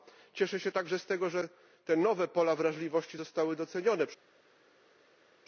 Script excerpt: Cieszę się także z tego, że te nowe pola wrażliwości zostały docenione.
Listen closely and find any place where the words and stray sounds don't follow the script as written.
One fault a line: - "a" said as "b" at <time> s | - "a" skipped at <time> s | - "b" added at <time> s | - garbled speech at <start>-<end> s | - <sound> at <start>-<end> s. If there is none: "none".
none